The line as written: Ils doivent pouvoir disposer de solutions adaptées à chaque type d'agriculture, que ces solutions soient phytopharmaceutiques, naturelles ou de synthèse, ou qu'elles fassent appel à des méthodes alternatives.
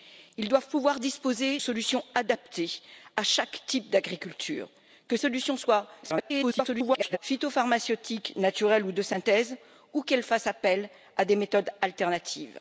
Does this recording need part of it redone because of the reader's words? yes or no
yes